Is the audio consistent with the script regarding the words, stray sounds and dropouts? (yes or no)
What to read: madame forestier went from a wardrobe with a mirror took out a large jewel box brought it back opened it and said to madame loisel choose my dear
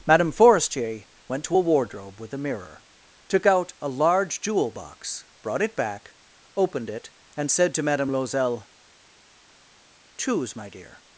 no